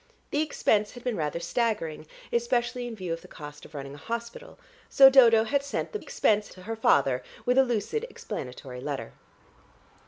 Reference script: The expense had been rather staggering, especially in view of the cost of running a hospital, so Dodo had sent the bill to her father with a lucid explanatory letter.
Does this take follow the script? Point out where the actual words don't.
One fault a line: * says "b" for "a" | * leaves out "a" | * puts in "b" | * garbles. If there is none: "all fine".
* says "expense" for "bill"